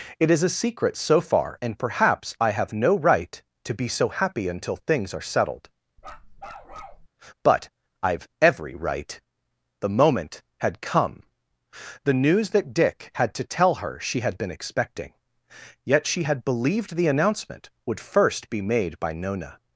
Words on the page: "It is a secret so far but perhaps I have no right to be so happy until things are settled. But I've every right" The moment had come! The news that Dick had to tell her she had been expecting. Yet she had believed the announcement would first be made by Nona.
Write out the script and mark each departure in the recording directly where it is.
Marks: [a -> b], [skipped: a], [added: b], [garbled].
"It is a secret so far [but -> and] perhaps I have no right to be so happy until things are settled. But I've every right" The moment had come! The news that Dick had to tell her she had been expecting. Yet she had believed the announcement would first be made by Nona.